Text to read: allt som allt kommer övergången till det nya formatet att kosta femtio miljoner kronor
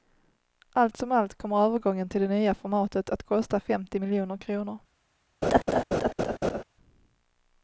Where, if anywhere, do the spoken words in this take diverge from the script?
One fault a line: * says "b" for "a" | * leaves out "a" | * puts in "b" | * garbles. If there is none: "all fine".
all fine